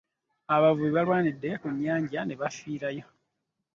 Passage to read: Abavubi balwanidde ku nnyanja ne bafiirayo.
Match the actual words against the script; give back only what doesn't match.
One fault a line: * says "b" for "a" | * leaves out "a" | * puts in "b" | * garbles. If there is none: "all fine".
all fine